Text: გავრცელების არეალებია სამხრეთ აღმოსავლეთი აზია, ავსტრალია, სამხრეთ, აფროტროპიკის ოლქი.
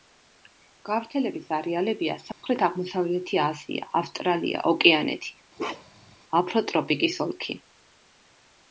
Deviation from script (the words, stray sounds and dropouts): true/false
true